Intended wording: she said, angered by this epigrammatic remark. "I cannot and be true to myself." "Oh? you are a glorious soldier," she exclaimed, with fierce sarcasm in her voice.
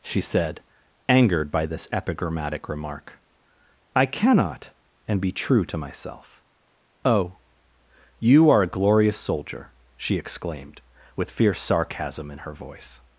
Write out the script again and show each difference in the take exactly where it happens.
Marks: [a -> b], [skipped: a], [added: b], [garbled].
she said, angered by this epigrammatic remark. "I cannot and be true to myself." "Oh? you are a glorious soldier," she exclaimed, with fierce sarcasm in her voice.